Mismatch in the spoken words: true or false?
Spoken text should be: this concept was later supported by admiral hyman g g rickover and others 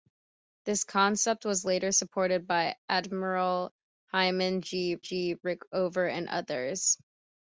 false